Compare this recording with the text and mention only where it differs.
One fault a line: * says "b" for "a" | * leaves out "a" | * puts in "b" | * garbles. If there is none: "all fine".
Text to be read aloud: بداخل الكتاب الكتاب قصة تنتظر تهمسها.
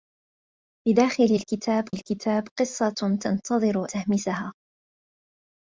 all fine